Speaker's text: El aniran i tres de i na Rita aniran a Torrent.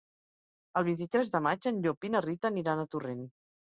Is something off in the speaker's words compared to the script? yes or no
yes